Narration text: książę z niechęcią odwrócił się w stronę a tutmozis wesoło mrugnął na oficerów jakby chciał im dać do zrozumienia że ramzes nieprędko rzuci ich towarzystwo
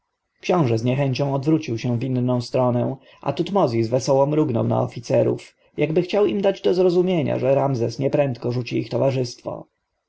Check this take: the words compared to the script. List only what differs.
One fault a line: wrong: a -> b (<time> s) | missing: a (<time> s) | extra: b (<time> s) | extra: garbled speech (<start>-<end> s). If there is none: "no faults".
extra: inną (2.0 s)